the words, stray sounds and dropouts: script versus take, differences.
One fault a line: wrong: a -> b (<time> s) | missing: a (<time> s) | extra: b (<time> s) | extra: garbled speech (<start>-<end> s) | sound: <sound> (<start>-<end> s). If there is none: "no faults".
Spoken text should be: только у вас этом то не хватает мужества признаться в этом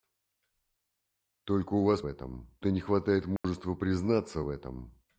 sound: dropout (3.4-3.4 s)